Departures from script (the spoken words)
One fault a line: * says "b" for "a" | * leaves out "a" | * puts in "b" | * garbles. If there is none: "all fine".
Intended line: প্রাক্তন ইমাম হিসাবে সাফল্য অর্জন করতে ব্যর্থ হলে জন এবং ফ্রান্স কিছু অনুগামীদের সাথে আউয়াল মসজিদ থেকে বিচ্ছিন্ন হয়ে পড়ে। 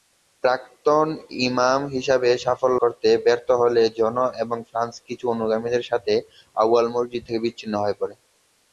* leaves out "অর্জন"